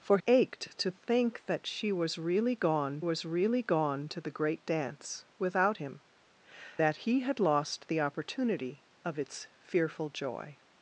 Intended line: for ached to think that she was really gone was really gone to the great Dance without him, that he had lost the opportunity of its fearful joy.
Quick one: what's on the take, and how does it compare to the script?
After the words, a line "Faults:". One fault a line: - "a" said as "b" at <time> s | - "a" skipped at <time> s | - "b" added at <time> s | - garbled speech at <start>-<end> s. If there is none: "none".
for ached to think that she was really gone was really gone to the great Dance without him, that he had lost the opportunity of its fearful joy.
Faults:
none